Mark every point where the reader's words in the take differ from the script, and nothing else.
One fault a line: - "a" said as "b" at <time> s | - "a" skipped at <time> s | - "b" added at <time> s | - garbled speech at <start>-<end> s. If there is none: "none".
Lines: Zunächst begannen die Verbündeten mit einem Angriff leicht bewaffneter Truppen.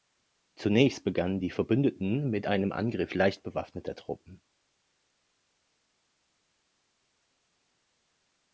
none